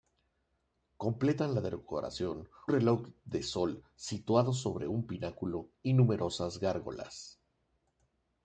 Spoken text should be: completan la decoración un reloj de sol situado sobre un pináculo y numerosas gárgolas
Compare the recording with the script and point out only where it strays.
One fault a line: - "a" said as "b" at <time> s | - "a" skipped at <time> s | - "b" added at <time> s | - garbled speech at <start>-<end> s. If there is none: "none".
- "un" skipped at 2.5 s